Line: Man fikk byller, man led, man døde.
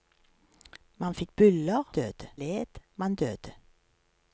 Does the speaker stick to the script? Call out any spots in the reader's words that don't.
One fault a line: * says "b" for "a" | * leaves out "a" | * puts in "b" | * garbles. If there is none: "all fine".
* says "døde" for "man"